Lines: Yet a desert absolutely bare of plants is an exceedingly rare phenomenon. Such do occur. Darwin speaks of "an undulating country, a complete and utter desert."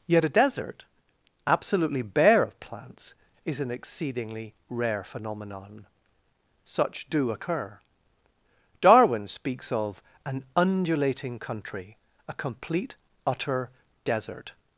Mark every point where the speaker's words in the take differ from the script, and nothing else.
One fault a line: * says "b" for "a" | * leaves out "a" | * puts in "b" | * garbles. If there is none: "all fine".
* leaves out "and"